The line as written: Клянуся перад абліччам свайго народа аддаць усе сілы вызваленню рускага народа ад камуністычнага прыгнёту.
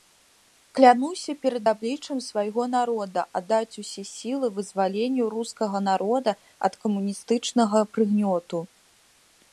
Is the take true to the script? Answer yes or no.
yes